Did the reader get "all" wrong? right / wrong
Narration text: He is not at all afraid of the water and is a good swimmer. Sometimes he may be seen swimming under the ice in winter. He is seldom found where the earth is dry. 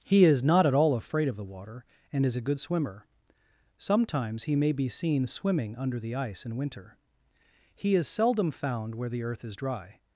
right